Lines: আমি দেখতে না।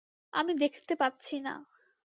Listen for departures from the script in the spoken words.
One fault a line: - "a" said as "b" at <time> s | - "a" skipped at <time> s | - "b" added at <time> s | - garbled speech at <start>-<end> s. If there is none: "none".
- "পাচ্ছি" added at 0.9 s